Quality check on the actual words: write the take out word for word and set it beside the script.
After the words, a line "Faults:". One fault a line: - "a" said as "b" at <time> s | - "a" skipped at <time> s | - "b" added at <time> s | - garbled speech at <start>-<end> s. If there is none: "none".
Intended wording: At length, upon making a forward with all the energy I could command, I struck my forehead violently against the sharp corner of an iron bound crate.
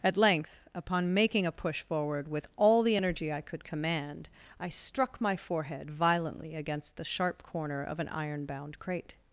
At length, upon making a push forward with all the energy I could command, I struck my forehead violently against the sharp corner of an iron bound crate.
Faults:
- "push" added at 1.5 s